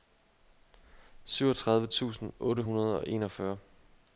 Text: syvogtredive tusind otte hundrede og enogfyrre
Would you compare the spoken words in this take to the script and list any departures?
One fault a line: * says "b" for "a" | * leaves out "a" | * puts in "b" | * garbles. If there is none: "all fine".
all fine